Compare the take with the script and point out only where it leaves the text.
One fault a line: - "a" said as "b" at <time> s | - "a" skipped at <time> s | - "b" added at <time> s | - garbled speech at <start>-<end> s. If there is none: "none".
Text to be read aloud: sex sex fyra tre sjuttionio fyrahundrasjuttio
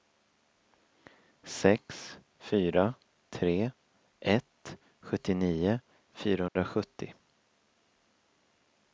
- "sex" skipped at 2.2 s
- "ett" added at 4.2 s